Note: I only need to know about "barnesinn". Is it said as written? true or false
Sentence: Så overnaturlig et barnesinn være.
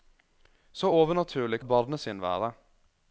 true